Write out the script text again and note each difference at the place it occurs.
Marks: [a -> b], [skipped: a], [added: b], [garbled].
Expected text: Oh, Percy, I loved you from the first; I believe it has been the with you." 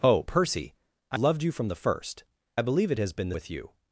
Oh, Percy, I loved you from the first; I believe it has been the with you."